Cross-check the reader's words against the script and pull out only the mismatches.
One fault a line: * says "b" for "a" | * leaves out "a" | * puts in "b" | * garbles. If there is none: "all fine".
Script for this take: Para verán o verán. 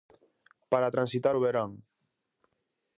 * says "transitar" for "verán"